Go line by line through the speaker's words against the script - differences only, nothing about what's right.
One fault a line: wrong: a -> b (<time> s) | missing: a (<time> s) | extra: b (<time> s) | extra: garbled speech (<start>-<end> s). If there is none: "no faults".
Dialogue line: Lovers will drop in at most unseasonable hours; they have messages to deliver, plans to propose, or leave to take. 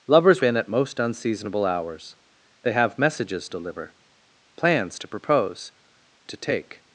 missing: will drop (0.4 s)
missing: to (3.5 s)
missing: or leave (5.7 s)